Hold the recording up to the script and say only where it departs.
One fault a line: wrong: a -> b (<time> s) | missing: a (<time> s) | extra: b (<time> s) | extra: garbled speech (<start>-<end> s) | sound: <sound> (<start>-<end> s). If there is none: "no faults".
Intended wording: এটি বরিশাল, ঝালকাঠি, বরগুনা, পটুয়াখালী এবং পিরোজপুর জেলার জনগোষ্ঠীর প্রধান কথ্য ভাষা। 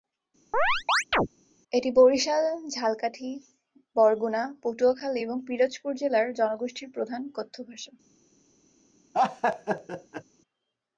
sound: chirp (0.5-1.3 s)
sound: laugh (9.1-10.2 s)